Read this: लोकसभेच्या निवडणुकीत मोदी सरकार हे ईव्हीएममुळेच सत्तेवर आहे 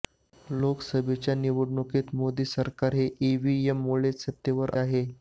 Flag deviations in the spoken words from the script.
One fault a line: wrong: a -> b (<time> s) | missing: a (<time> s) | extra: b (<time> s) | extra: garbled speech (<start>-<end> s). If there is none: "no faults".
no faults